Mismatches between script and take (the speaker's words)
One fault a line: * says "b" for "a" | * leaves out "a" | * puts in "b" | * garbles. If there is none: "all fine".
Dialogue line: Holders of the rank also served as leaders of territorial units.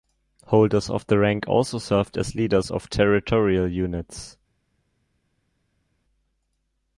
all fine